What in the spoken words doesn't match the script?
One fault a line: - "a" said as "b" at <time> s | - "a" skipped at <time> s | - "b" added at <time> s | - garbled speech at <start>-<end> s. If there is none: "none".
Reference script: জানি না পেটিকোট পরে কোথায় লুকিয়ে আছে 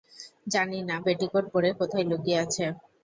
none